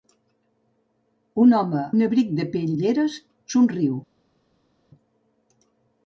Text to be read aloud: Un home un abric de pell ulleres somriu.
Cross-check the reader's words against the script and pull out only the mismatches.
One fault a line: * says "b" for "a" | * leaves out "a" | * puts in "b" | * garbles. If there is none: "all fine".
all fine